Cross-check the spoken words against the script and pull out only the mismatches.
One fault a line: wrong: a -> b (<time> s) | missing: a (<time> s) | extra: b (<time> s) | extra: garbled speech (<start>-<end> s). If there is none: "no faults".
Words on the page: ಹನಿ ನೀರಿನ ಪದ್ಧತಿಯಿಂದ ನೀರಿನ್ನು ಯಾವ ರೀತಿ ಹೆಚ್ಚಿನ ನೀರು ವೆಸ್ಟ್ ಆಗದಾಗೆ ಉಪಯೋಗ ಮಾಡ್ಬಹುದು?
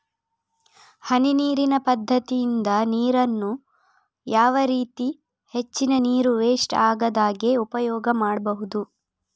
no faults